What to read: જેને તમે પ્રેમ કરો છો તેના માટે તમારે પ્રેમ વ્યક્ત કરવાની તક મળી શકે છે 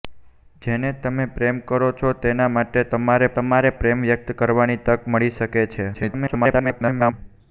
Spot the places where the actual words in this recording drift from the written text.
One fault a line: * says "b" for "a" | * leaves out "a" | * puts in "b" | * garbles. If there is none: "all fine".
* puts in "તમારે"
* garbles